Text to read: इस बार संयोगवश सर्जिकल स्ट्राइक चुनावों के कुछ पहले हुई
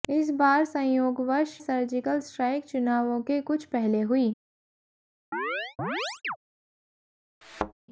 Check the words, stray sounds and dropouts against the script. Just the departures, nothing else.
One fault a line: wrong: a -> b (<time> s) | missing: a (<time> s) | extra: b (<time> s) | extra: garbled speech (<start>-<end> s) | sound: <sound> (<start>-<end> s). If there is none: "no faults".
sound: chirp (5.3-6.4 s)
sound: thud (7.4-7.7 s)